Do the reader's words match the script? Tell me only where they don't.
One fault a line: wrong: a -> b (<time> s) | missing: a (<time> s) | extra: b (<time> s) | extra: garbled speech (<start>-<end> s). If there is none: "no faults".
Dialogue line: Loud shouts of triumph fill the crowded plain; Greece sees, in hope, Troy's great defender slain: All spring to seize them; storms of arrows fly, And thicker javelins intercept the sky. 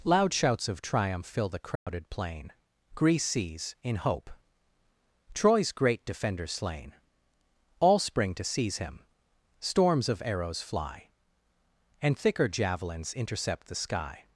wrong: them -> him (8.8 s)